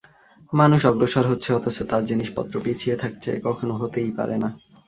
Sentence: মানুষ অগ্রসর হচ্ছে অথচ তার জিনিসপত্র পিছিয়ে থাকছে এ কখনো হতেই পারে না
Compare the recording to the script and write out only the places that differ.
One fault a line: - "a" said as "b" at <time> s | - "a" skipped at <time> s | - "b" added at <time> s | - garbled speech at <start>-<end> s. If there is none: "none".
none